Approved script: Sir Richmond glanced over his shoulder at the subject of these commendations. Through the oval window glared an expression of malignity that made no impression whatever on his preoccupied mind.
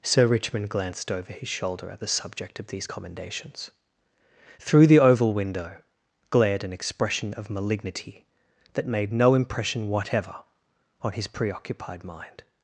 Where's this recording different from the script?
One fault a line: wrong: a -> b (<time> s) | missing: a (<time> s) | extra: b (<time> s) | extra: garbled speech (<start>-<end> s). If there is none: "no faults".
no faults